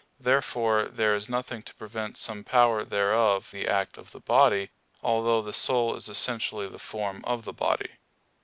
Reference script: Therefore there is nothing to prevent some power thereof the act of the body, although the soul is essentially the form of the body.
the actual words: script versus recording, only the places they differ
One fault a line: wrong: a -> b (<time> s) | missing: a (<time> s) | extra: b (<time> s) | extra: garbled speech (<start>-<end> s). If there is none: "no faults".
no faults